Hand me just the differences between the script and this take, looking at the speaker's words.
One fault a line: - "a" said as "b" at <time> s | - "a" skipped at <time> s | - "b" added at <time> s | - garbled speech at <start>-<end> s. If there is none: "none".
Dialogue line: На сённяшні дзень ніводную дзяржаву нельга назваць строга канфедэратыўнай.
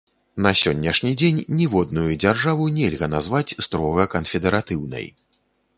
none